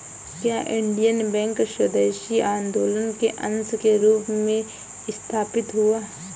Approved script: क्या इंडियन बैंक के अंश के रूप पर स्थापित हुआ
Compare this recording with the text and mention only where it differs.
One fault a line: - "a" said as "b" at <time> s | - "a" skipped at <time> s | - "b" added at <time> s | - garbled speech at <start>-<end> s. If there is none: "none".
- "स्वदेशी आंदोलन" added at 1.7 s
- "पर" said as "में" at 4.3 s